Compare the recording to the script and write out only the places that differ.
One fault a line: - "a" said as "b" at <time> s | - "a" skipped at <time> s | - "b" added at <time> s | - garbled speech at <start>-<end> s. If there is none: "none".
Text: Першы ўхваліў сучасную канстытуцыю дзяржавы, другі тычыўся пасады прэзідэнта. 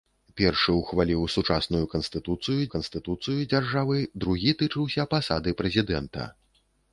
- "канстытуцыю" added at 2.7 s